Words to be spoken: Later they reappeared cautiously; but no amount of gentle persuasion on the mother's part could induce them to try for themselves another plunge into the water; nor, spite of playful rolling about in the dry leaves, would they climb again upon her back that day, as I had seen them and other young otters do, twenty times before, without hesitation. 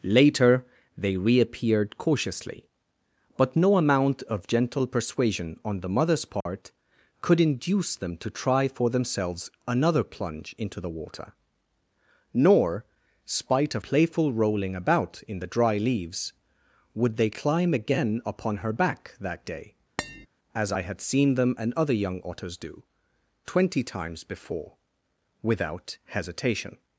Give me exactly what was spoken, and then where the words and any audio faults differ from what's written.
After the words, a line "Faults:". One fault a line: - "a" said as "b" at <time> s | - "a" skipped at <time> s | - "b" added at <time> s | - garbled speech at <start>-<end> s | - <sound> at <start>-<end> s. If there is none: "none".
Later they reappeared cautiously; but no amount of gentle persuasion on the mother's part could induce them to try for themselves another plunge into the water; nor, spite of playful rolling about in the dry leaves, would they climb again upon her back that day, as I had seen them and other young otters do, twenty times before, without hesitation.
Faults:
- dropout at 6.4-6.5 s
- tap at 20.0-20.3 s